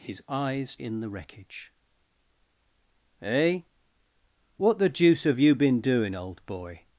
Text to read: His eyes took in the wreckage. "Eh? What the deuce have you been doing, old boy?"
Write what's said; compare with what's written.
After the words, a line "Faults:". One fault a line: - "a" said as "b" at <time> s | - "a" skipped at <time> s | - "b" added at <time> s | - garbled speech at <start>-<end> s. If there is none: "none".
His eyes in the wreckage. "Eh? What the deuce have you been doing, old boy?"
Faults:
- "took" skipped at 0.8 s